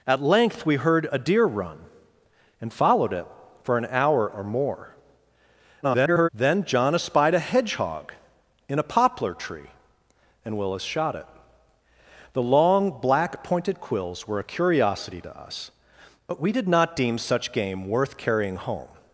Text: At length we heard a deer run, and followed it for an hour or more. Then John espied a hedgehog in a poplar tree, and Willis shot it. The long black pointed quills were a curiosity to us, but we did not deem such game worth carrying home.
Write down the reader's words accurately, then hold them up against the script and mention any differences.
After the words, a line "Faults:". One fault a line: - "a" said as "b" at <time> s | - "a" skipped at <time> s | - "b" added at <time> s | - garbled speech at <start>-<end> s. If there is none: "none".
At length we heard a deer run, and followed it for an hour or more. [garbled] Then John espied a hedgehog in a poplar tree, and Willis shot it. The long black pointed quills were a curiosity to us, but we did not deem such game worth carrying home.
Faults:
- garbled speech at 5.8-6.3 s